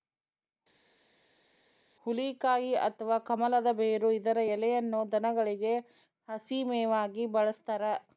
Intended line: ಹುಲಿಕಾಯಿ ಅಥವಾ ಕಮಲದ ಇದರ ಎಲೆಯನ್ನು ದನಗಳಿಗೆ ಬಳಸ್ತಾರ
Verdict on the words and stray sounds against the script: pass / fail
fail